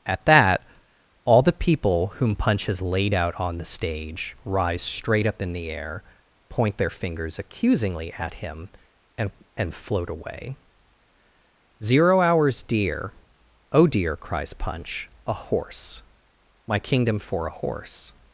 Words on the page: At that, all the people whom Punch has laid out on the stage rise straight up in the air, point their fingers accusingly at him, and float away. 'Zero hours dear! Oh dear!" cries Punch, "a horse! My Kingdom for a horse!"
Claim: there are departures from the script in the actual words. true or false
true